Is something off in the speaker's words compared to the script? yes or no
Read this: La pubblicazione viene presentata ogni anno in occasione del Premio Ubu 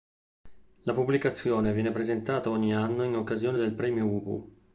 no